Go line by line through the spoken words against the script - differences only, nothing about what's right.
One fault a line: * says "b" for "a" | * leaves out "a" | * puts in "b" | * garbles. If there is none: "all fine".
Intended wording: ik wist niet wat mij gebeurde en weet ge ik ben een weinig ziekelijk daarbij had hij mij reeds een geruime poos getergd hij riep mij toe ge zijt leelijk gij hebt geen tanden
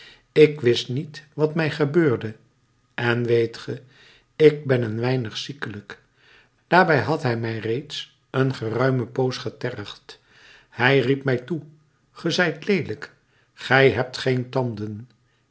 all fine